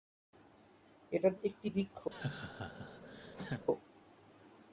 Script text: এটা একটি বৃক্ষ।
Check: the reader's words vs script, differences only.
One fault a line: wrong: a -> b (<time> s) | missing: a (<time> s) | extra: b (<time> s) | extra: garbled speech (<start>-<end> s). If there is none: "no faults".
no faults